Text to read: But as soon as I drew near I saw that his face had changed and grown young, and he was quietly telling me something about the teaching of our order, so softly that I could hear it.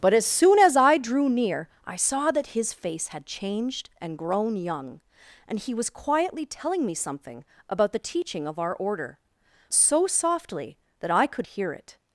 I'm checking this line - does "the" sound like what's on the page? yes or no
yes